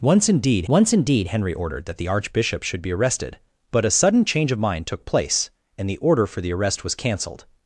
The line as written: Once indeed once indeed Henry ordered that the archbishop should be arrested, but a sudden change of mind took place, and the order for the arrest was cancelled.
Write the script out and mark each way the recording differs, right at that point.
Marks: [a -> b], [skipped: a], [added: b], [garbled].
Once indeed once indeed Henry ordered that the archbishop should be arrested, but a sudden change of mind took place, and the order for the arrest was cancelled.